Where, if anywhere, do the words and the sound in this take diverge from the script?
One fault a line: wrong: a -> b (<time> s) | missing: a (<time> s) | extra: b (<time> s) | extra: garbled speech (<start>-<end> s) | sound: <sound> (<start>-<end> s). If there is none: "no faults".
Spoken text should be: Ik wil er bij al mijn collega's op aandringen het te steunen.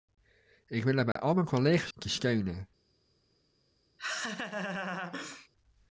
sound: dropout (1.1-1.2 s)
missing: op aandringen het (1.9 s)
sound: laugh (4.0-5.5 s)